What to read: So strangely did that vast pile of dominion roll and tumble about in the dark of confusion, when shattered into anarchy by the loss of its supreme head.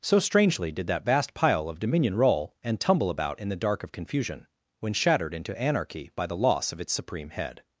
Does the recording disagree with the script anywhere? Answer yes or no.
no